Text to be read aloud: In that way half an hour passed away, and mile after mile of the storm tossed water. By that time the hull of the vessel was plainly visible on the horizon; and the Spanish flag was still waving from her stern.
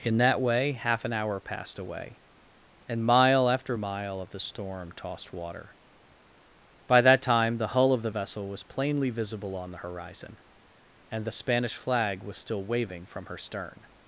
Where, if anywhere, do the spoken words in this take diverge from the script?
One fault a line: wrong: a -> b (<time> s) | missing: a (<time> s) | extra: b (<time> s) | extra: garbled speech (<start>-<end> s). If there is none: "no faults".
no faults